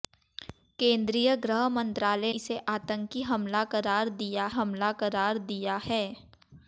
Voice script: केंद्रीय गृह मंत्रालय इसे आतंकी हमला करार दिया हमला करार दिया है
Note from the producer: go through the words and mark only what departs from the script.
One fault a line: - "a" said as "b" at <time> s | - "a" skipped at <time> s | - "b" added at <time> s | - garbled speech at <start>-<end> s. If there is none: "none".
none